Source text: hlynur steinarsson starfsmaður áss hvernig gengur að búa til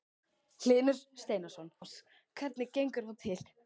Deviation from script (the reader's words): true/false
true